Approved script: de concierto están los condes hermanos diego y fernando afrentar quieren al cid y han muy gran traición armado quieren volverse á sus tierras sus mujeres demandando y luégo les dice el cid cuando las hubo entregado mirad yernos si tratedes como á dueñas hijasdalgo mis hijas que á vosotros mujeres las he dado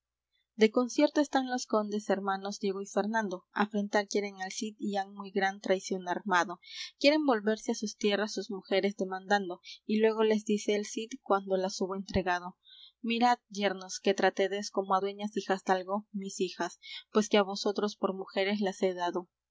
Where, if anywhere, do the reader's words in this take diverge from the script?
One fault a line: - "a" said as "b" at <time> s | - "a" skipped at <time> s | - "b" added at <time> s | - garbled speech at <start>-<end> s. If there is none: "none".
- "si" said as "que" at 14.0 s
- "pues" added at 17.1 s
- "por" added at 18.0 s